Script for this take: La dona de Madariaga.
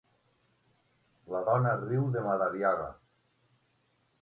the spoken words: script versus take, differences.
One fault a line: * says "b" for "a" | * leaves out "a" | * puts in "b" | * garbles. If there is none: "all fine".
* puts in "riu"